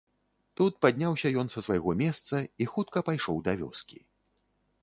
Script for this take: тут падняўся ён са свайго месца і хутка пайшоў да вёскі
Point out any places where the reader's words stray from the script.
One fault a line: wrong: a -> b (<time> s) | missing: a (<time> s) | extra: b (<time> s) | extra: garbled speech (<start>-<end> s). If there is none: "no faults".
no faults